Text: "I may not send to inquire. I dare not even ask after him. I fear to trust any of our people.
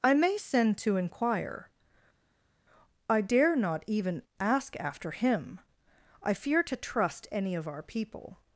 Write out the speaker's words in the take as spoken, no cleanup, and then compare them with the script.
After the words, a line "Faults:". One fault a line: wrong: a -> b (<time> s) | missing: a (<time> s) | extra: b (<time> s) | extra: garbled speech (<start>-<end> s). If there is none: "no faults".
"I may send to inquire. I dare not even ask after him. I fear to trust any of our people.
Faults:
missing: not (0.4 s)